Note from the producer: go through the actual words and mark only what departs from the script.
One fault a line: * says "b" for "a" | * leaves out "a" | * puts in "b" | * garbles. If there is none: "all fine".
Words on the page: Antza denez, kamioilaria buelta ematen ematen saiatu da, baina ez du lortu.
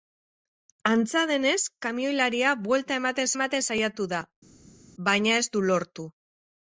all fine